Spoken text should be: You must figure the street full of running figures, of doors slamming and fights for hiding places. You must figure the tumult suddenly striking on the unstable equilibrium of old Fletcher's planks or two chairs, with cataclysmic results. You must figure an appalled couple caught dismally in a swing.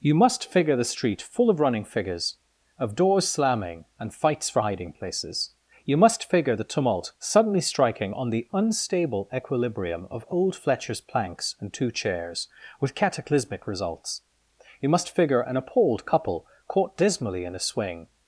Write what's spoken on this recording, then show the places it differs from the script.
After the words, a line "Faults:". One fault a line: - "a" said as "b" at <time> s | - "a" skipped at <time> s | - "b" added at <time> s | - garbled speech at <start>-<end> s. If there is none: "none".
You must figure the street full of running figures, of doors slamming and fights for hiding places. You must figure the tumult suddenly striking on the unstable equilibrium of old Fletcher's planks and two chairs, with cataclysmic results. You must figure an appalled couple caught dismally in a swing.
Faults:
- "or" said as "and" at 11.6 s